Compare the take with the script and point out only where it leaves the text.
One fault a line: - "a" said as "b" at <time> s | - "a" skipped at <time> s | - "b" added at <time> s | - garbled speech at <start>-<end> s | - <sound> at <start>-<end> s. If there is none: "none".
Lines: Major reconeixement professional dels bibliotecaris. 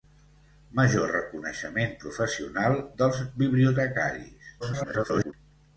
- garbled speech at 4.6-5.3 s